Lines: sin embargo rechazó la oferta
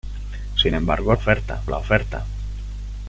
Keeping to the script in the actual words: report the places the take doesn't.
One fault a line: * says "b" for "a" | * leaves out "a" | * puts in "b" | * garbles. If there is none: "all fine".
* says "oferta" for "rechazó"